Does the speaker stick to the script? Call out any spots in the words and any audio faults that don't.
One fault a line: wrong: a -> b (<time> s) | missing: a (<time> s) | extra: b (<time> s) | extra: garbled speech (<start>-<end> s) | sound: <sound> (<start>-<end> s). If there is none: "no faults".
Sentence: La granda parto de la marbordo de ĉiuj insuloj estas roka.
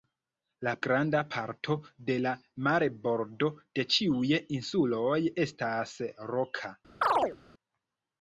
sound: chirp (7.0-7.4 s)